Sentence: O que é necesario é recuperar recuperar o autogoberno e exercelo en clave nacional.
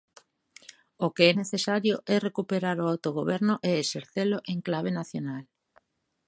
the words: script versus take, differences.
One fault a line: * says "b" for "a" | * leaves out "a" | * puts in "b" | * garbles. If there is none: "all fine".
* leaves out "recuperar"